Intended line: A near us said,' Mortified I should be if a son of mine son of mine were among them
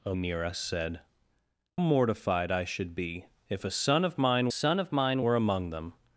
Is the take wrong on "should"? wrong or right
right